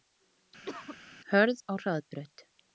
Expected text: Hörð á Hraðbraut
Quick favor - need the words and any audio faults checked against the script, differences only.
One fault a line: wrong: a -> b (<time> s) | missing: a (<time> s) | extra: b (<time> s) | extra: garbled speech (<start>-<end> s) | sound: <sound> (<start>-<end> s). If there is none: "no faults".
sound: cough (0.7-1.0 s)